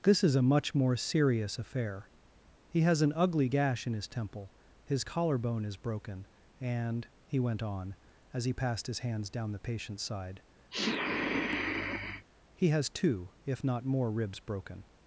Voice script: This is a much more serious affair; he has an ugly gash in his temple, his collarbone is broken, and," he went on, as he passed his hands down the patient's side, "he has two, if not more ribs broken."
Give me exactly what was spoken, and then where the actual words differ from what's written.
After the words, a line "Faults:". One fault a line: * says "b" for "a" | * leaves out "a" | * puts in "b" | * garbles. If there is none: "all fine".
This is a much more serious affair; he has an ugly gash in his temple, his collarbone is broken, and," he went on, as he passed his hands down the patient's side, "he has two, if not more ribs broken."
Faults:
all fine